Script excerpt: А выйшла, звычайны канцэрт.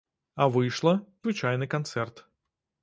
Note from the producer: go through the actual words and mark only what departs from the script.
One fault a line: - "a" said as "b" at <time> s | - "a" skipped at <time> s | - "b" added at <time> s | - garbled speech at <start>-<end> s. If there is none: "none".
none